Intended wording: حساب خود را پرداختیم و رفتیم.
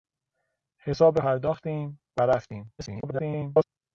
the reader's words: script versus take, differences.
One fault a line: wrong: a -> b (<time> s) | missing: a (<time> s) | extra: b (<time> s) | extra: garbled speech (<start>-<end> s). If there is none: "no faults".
missing: خود را (1.2 s)
extra: garbled speech (2.8-3.6 s)